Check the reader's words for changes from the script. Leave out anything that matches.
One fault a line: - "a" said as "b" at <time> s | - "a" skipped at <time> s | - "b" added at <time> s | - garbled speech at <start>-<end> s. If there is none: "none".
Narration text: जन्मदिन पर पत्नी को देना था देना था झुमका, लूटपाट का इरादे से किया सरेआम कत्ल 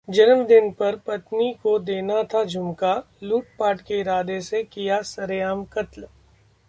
- "देना था" skipped at 2.4 s
- "का" said as "के" at 3.8 s